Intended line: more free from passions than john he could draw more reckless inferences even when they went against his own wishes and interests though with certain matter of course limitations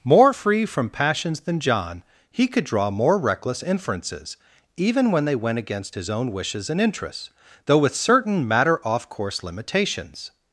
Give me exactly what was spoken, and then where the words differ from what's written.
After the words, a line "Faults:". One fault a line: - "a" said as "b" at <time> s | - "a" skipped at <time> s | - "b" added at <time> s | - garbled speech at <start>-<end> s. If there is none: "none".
more free from passions than john he could draw more reckless inferences even when they went against his own wishes and interests though with certain matter off course limitations
Faults:
- "of" said as "off" at 8.9 s